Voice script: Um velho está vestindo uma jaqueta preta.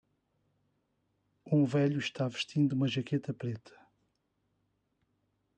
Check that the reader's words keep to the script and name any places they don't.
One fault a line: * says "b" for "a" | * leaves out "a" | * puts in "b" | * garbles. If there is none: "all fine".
all fine